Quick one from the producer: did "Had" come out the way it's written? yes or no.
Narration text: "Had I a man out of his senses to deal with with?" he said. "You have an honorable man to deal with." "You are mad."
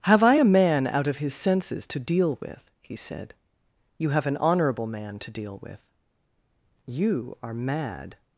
no